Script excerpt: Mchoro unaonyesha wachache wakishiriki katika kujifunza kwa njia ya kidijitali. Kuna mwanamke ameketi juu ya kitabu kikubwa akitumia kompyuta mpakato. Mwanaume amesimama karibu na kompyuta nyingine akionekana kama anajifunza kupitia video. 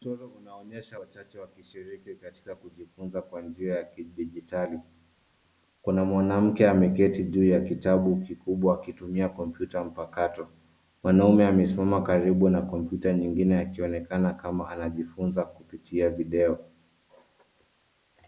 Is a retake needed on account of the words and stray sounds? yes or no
no